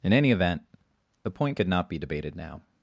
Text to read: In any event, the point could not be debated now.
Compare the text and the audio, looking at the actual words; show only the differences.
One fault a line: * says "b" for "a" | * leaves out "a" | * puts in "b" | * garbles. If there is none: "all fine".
all fine